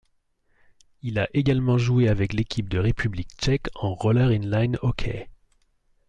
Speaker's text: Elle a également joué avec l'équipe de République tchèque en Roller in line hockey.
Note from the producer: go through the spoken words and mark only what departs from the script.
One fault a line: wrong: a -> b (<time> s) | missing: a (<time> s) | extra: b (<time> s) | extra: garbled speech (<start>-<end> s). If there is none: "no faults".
wrong: Elle -> Il (1.0 s)